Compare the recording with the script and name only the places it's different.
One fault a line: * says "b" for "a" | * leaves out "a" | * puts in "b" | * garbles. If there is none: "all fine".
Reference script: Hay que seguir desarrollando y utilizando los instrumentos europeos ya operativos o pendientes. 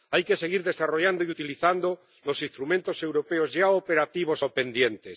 all fine